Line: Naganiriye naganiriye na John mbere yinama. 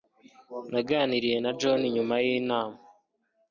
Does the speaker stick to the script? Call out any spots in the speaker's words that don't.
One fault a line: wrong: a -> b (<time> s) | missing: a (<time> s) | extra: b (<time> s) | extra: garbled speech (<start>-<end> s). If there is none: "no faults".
missing: naganiriye (1.4 s)
wrong: mbere -> nyuma (1.9 s)